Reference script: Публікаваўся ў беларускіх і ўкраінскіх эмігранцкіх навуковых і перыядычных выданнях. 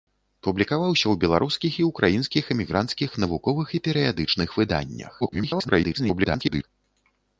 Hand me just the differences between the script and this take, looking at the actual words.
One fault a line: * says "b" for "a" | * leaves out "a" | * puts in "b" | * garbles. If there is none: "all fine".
* garbles